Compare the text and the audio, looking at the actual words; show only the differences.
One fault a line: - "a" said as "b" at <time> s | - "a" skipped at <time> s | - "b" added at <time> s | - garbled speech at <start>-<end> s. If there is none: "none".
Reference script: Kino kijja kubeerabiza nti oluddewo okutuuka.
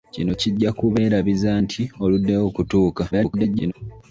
- garbled speech at 3.1-3.7 s